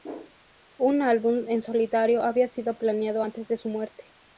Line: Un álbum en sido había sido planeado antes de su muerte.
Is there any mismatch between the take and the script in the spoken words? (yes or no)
yes